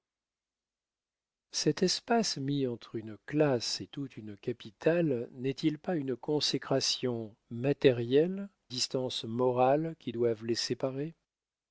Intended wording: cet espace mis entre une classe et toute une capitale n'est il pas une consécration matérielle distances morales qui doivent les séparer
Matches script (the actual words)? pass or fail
pass